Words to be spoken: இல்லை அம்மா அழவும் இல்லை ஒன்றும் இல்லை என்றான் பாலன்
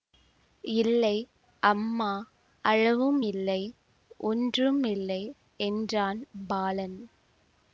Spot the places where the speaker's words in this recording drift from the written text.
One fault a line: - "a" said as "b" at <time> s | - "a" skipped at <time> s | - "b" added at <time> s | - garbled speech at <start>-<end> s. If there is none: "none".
none